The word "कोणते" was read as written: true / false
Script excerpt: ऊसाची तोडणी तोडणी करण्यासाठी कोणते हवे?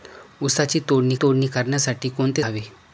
true